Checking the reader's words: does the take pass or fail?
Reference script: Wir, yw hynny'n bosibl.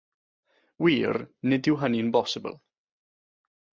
fail